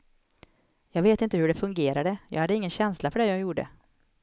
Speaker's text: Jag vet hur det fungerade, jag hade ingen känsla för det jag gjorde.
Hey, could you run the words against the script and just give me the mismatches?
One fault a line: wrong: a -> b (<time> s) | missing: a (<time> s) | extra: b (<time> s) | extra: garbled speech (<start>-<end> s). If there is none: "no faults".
extra: inte (1.2 s)